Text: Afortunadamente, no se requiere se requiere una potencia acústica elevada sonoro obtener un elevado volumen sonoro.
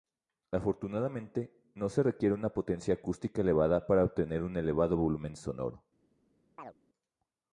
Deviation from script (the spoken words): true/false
true